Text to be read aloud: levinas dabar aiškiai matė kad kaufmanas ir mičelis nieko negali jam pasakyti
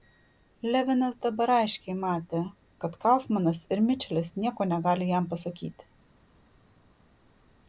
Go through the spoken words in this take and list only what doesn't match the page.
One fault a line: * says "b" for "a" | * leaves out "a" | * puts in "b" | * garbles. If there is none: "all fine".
all fine